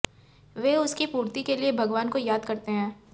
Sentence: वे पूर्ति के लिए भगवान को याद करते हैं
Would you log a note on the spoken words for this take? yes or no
yes